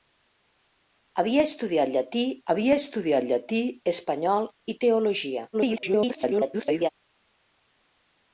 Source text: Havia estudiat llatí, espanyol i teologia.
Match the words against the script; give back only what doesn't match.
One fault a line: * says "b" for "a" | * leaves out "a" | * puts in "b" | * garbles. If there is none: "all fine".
* puts in "havia estudiat llatí"
* garbles